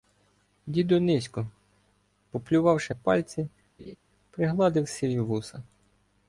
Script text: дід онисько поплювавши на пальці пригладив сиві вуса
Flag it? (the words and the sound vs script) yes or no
yes